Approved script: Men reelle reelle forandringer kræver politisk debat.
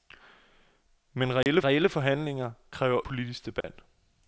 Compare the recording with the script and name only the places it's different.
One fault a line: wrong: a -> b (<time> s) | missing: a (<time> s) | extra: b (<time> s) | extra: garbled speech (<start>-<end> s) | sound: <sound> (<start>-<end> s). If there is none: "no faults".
sound: dropout (1.4-1.5 s)
sound: dropout (3.6-3.6 s)